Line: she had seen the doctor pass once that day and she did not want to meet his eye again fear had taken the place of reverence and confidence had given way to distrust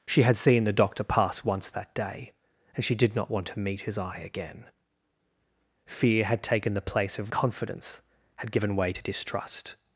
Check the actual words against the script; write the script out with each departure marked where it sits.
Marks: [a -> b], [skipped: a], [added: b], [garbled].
she had seen the doctor pass once that day and she did not want to meet his eye again fear had taken the place of [skipped: reverence and] confidence had given way to distrust